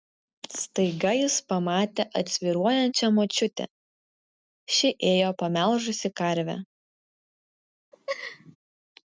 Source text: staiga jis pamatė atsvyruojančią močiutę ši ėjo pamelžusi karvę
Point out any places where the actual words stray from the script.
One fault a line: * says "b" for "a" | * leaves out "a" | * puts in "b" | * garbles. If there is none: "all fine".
all fine